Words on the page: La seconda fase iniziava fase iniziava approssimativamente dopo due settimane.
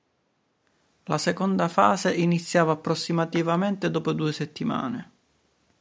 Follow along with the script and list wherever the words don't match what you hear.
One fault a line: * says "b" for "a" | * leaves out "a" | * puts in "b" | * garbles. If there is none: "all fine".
* leaves out "fase iniziava"